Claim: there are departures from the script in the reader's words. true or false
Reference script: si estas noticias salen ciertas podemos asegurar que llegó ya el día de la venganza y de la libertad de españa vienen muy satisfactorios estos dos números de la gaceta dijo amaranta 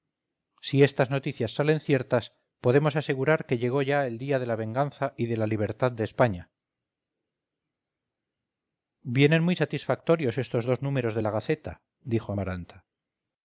false